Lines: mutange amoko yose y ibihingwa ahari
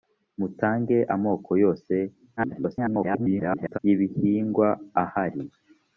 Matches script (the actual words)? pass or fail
fail